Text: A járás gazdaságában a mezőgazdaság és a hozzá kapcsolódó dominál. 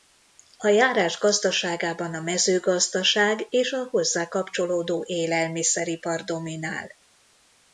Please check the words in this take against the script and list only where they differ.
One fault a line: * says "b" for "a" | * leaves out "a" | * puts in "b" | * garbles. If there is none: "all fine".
* puts in "élelmiszeripar"